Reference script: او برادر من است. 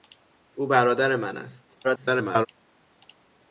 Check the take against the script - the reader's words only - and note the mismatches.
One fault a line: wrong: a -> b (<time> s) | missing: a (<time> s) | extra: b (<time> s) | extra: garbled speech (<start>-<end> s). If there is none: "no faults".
extra: garbled speech (1.8-2.5 s)